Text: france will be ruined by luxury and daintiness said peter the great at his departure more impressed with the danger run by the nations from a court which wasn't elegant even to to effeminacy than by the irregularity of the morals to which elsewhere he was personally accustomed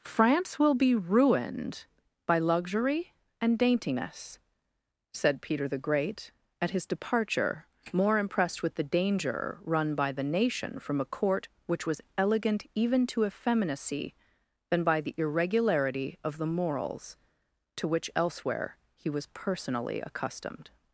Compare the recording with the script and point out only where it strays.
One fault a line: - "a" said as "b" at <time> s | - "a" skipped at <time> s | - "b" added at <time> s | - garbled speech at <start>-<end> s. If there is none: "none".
- "nations" said as "nation" at 10.2 s
- "wasn't" said as "was" at 11.9 s
- "to" skipped at 13.3 s